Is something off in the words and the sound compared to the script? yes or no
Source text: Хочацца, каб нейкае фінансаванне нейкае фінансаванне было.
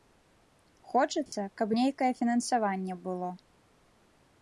yes